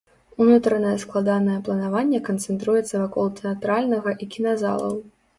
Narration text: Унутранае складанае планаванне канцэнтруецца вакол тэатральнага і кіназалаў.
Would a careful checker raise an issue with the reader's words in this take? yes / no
no